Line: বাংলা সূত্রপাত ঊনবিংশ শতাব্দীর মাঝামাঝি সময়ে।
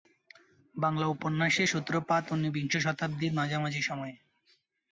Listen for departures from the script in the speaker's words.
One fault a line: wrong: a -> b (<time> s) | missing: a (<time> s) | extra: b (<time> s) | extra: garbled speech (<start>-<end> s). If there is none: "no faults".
extra: উপন্যাসের (1.1 s)